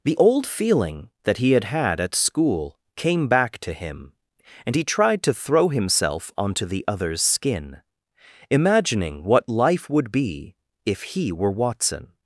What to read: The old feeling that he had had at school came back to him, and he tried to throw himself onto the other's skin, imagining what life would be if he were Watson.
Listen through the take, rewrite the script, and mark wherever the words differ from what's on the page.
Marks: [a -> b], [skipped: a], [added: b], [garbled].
The old feeling that he had had at school came back to him, and he tried to throw himself onto the other's skin, imagining what life would be if he were Watson.